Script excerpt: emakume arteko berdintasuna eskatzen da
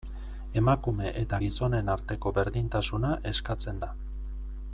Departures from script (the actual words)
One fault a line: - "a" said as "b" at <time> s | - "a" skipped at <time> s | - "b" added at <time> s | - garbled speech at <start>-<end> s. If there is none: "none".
- "eta gizonen" added at 1.2 s